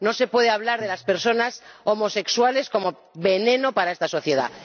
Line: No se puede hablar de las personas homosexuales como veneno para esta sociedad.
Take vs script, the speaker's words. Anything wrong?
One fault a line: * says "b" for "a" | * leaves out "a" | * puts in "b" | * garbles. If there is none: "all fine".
all fine